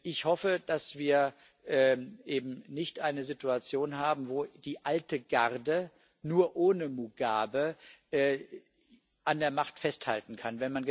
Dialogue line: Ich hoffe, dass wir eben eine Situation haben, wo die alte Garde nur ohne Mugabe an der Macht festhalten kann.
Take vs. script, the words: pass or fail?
fail